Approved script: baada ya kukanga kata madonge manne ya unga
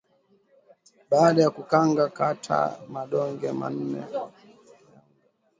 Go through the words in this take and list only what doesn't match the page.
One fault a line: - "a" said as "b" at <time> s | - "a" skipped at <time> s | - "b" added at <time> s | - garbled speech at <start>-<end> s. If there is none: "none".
none